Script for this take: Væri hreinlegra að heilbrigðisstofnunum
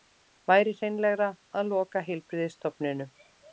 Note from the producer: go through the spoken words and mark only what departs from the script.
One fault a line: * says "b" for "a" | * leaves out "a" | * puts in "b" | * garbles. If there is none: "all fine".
* puts in "loka"